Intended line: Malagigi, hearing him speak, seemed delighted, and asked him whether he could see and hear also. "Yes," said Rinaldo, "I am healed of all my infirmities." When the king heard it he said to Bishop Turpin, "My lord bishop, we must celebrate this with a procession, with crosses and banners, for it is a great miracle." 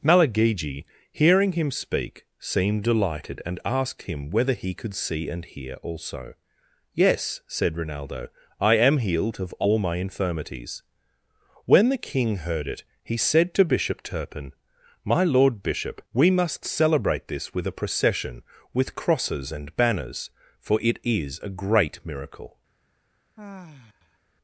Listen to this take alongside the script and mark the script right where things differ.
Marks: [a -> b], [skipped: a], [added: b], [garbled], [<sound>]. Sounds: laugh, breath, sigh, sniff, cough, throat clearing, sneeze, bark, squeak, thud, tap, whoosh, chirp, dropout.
Malagigi, hearing him speak, seemed delighted, and asked him whether he could see and hear also. "Yes," said Rinaldo, "I am healed of all my infirmities." When the king heard it he said to Bishop Turpin, "My lord bishop, we must celebrate this with a procession, with crosses and banners, for it is a great miracle." [sigh]